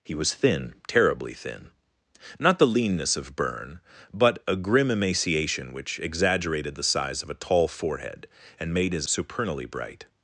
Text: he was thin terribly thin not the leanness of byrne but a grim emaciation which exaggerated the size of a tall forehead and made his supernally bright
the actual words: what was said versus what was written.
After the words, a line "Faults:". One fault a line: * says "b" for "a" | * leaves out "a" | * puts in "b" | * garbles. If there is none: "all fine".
he was thin terribly thin not the leanness of byrne but a grim emaciation which exaggerated the size of a tall forehead and made his supernally bright
Faults:
all fine